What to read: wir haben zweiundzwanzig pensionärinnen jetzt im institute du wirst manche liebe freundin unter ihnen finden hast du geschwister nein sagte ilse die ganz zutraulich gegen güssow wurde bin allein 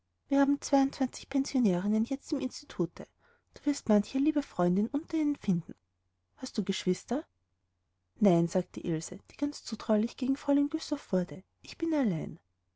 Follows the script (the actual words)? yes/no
no